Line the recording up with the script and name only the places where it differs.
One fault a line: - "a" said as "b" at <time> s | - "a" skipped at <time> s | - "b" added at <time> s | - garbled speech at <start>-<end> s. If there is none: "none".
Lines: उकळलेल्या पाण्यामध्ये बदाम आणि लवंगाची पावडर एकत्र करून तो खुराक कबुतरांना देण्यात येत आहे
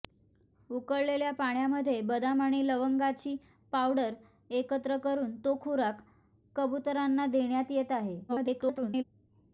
- garbled speech at 8.3-9.0 s